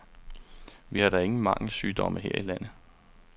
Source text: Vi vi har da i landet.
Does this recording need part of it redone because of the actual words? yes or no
yes